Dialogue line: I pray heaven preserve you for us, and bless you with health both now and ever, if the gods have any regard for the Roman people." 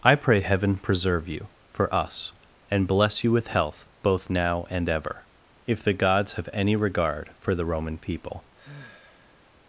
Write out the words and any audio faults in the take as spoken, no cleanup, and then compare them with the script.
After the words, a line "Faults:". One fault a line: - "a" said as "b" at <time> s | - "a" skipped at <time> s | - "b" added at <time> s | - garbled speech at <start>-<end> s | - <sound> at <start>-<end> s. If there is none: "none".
I pray heaven preserve you for us, and bless you with health both now and ever, if the gods have any regard for the Roman people."
Faults:
- sigh at 8.5-9.5 s